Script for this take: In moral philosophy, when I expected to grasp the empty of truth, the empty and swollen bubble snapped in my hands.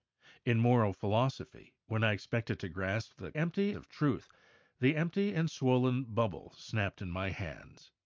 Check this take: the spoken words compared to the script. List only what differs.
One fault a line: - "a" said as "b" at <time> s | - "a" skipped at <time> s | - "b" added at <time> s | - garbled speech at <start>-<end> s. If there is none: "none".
none